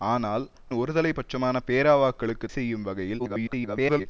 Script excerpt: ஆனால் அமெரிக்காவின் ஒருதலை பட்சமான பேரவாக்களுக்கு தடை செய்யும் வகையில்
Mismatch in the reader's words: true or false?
true